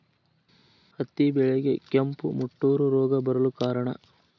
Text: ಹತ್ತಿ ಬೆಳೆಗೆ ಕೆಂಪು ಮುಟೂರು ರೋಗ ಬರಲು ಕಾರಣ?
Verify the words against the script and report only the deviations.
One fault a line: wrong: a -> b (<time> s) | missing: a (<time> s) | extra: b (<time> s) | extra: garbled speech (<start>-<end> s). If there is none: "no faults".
no faults